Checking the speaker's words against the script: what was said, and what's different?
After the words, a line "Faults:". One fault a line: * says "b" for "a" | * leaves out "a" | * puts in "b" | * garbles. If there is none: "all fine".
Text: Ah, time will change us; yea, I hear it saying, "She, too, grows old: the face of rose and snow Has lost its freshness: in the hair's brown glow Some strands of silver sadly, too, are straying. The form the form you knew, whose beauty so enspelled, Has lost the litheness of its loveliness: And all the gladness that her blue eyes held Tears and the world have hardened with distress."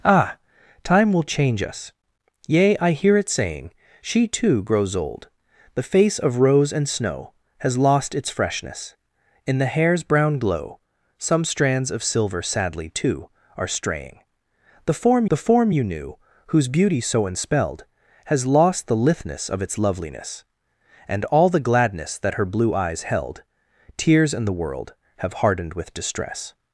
Ah, time will change us; yea, I hear it saying, "She, too, grows old: the face of rose and snow Has lost its freshness: in the hair's brown glow Some strands of silver sadly, too, are straying. The form the form you knew, whose beauty so enspelled, Has lost the litheness of its loveliness: And all the gladness that her blue eyes held Tears and the world have hardened with distress."
Faults:
all fine